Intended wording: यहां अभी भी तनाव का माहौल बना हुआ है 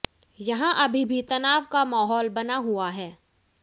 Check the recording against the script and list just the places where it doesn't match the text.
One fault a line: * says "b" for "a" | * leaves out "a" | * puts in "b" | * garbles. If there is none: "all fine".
all fine